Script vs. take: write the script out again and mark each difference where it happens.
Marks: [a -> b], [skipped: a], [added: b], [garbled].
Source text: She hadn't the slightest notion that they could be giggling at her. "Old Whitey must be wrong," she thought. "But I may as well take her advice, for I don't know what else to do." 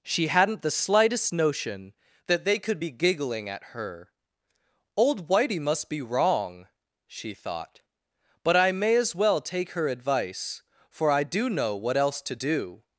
She hadn't the slightest notion that they could be giggling at her. "Old Whitey must be wrong," she thought. "But I may as well take her advice, for I [don't -> do] know what else to do."